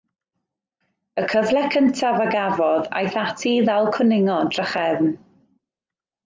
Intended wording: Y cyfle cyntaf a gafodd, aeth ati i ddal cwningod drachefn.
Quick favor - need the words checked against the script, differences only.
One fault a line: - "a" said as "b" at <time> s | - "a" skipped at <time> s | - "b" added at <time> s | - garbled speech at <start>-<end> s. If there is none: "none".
none